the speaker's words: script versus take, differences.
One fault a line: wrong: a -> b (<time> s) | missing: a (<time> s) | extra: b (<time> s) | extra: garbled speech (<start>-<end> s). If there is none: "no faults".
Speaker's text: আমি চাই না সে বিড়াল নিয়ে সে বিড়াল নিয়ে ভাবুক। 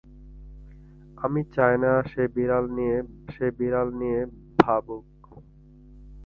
no faults